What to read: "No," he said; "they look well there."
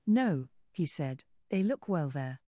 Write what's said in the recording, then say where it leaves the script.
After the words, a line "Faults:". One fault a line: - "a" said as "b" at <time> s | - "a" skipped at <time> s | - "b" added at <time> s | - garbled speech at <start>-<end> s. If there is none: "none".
"No," he said; "they look well there."
Faults:
none